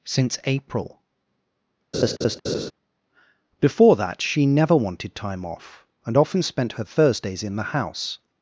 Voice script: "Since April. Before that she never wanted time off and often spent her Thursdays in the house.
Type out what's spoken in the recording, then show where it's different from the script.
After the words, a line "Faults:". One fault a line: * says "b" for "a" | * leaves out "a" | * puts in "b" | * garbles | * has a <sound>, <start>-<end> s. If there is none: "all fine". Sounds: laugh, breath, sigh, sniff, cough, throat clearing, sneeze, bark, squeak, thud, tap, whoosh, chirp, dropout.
"Since April. Before that she never wanted time off and often spent her Thursdays in the house.
Faults:
* has a laugh, 1.9-2.7 s